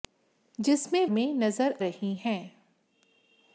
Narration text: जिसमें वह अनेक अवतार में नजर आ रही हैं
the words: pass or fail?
fail